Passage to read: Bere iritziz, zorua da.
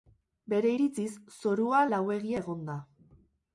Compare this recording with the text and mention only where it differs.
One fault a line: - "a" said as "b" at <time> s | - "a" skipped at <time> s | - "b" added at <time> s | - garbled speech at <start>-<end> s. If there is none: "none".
- "lauegia egon" added at 1.9 s